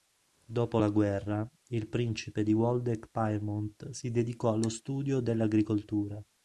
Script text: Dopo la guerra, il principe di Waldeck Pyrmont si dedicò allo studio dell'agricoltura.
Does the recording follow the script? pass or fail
pass